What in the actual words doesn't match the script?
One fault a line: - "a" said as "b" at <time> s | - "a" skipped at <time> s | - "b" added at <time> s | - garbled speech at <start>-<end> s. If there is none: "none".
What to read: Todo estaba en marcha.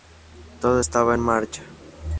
none